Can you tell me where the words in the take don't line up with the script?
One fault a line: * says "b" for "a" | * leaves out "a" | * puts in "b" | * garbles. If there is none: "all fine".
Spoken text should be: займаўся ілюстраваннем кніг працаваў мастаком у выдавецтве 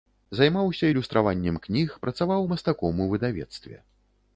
all fine